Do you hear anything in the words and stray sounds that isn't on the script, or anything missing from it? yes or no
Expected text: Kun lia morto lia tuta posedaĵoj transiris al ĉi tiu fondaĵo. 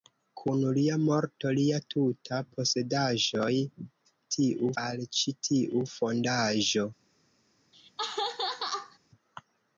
yes